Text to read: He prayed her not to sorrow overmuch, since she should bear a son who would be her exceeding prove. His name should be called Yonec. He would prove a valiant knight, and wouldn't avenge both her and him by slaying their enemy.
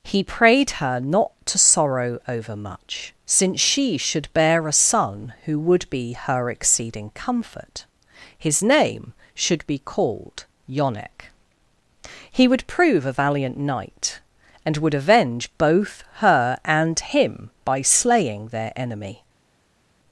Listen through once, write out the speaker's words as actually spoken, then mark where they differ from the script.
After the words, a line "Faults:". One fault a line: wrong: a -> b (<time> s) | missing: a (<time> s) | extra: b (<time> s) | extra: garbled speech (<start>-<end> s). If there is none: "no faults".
He prayed her not to sorrow overmuch, since she should bear a son who would be her exceeding comfort. His name should be called Yonec. He would prove a valiant knight, and would avenge both her and him by slaying their enemy.
Faults:
wrong: prove -> comfort (7.1 s)
wrong: wouldn't -> would (14.8 s)